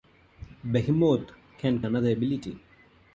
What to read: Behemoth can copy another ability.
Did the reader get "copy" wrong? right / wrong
wrong